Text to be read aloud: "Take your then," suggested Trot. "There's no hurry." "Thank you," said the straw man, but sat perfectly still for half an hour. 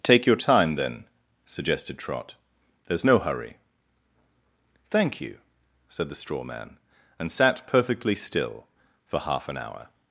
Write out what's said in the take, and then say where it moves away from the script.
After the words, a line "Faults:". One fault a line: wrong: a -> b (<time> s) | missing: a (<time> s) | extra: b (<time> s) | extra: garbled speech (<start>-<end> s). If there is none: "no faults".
"Take your time, then," suggested Trot. "There's no hurry." "Thank you," said the straw man, and sat perfectly still for half an hour.
Faults:
extra: time (0.3 s)
wrong: but -> and (7.2 s)